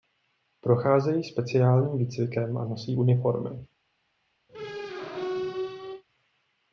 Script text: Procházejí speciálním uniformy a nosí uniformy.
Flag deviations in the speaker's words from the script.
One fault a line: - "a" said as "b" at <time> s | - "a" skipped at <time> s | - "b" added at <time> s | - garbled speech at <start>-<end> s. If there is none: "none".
- "uniformy" said as "výcvikem" at 2.0 s